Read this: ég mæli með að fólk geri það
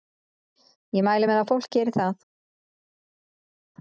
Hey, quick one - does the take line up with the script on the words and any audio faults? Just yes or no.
yes